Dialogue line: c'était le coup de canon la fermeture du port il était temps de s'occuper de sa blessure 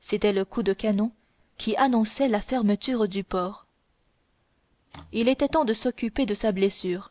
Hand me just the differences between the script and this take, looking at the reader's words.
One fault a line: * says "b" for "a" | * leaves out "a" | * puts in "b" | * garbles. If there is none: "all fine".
* puts in "qui annonçait"